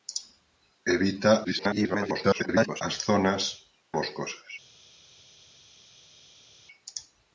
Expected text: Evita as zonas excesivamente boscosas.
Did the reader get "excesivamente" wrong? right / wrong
wrong